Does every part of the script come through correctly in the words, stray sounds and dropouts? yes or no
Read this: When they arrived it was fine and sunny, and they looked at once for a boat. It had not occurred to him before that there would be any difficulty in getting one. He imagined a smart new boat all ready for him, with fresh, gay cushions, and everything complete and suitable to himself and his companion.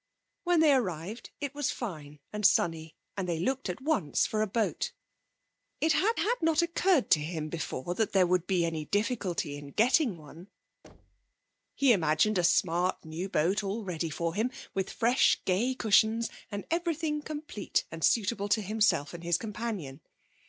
no